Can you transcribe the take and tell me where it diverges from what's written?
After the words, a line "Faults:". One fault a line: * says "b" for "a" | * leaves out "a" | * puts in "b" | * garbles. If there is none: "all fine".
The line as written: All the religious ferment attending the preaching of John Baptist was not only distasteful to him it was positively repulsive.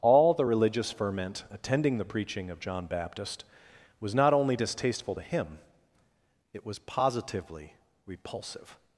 All the religious ferment attending the preaching of John Baptist was not only distasteful to him it was positively repulsive.
Faults:
all fine